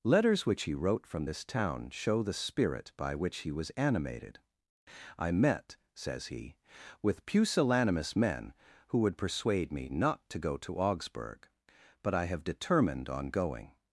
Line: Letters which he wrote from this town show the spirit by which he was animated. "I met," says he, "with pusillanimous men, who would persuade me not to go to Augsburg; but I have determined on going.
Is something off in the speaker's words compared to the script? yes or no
no